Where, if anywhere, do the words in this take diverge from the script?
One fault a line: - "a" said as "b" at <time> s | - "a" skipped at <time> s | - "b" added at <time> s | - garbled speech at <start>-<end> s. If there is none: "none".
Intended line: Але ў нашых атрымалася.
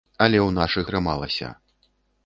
none